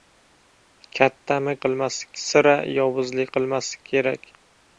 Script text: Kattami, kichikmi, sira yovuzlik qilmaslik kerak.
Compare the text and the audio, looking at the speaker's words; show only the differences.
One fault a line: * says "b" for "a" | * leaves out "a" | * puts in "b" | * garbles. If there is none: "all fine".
* says "qilmaslik" for "kichikmi"